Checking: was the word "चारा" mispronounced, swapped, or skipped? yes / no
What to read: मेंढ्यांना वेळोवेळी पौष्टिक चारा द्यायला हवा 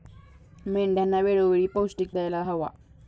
yes